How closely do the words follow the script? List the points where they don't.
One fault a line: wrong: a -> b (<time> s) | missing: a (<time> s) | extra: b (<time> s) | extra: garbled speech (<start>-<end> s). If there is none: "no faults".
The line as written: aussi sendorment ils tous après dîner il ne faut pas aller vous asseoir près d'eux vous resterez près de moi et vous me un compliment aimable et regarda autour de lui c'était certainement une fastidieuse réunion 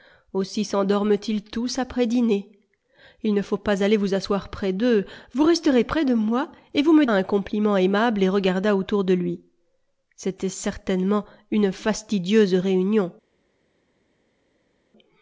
no faults